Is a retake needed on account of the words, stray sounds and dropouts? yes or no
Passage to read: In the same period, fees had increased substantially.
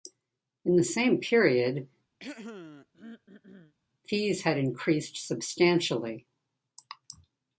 yes